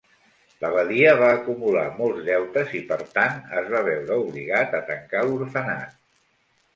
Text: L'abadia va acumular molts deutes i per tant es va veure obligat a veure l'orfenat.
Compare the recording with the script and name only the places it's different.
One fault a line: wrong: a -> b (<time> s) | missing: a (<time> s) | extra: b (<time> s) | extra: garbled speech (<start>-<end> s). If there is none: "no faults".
wrong: veure -> tancar (4.9 s)